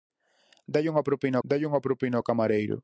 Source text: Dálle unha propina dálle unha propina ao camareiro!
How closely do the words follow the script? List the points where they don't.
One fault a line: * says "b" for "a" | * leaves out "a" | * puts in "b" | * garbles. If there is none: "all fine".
all fine